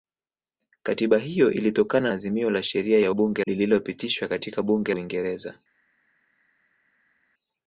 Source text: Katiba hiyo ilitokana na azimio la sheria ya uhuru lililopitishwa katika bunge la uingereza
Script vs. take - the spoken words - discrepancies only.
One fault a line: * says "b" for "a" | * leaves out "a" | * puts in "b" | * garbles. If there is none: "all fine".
* leaves out "na"
* says "bunge" for "uhuru"
* leaves out "la"